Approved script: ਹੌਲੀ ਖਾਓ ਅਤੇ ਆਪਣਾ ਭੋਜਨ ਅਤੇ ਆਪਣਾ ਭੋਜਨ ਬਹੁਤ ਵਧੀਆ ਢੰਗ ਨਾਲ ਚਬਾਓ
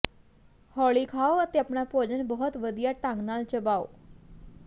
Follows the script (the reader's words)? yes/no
no